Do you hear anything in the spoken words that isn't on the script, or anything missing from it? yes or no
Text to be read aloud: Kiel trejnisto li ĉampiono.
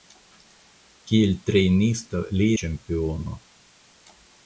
no